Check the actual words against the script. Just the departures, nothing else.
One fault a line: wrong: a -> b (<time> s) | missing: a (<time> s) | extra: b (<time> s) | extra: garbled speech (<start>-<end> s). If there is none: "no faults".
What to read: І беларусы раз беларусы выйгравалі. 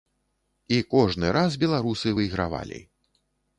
wrong: беларусы -> кожны (0.9 s)